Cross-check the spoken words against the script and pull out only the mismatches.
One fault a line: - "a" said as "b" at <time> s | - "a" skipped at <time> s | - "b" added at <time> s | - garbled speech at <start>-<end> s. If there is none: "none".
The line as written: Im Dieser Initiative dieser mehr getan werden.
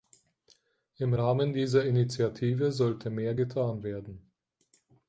- "Rahmen" added at 1.1 s
- "dieser" said as "sollte" at 2.7 s